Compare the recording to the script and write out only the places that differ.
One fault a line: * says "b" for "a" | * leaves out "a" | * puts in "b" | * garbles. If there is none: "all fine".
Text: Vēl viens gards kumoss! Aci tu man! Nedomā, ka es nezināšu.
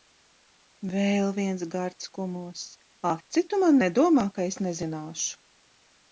all fine